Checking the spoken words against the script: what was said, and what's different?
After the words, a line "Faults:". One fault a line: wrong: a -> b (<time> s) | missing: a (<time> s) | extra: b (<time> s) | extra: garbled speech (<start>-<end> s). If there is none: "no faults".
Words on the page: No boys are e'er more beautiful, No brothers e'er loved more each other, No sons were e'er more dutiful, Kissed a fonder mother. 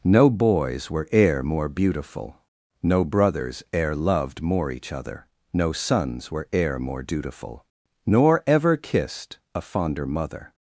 No boys were e'er more beautiful, No brothers e'er loved more each other, No sons were e'er more dutiful, Nor ever kissed a fonder mother.
Faults:
wrong: are -> were (0.9 s)
extra: Nor ever (8.1 s)